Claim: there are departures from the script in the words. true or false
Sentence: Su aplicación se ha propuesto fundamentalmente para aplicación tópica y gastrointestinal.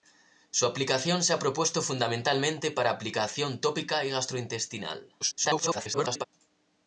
true